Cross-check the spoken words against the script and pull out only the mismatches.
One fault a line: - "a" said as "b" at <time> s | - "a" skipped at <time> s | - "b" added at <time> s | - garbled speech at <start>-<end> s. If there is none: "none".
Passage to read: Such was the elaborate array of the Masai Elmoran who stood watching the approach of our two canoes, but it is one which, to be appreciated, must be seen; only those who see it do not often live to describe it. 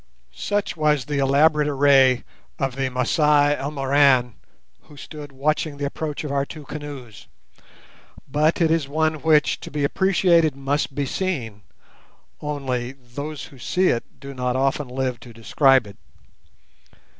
none